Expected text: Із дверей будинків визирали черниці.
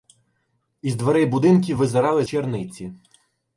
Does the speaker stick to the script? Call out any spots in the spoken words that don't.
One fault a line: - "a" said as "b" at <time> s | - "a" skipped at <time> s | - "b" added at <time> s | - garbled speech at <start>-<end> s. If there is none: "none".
none